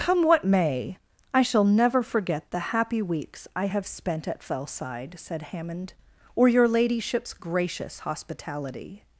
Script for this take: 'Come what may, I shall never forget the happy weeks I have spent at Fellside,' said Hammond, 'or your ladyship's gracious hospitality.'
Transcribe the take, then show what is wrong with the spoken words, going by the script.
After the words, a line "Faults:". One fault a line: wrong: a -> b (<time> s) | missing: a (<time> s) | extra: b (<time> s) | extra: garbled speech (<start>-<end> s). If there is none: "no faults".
'Come what may, I shall never forget the happy weeks I have spent at Fellside,' said Hammond, 'or your ladyship's gracious hospitality.'
Faults:
no faults